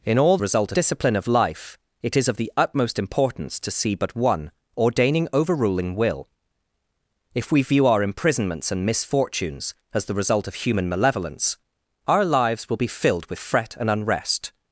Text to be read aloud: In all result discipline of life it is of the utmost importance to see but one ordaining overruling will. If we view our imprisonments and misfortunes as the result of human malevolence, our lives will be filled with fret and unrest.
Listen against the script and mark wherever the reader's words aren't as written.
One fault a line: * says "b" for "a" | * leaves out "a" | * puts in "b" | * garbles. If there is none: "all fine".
all fine